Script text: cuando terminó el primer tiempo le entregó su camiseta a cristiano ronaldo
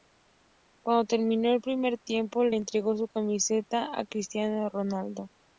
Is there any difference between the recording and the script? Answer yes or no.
no